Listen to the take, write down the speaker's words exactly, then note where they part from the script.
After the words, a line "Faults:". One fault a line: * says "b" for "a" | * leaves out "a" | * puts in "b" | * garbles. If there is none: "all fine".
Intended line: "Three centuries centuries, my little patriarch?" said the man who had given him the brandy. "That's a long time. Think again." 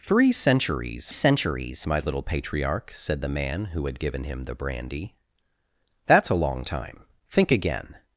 "Three centuries centuries, my little patriarch?" said the man who had given him the brandy. "That's a long time. Think again."
Faults:
all fine